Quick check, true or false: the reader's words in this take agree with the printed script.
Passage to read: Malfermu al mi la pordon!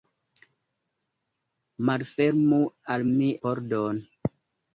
false